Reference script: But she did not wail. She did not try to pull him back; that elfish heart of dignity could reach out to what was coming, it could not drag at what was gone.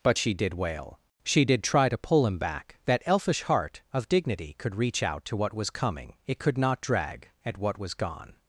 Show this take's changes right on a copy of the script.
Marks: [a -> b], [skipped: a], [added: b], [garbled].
But she did [skipped: not] wail. She did [skipped: not] try to pull him back; that elfish heart of dignity could reach out to what was coming, it could not drag at what was gone.